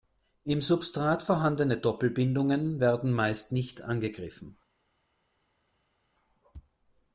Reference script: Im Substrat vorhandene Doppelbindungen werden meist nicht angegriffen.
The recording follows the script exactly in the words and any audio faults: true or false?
true